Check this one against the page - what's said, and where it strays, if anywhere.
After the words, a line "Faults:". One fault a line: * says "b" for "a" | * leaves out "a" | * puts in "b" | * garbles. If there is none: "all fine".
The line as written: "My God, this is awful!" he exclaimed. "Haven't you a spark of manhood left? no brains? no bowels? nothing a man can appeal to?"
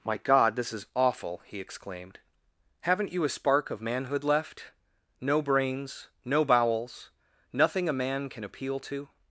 "My God, this is awful!" he exclaimed. "Haven't you a spark of manhood left? no brains? no bowels? nothing a man can appeal to?"
Faults:
all fine